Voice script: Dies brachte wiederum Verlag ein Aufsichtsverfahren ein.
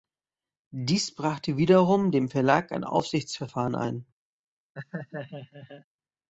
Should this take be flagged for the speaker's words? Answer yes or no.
yes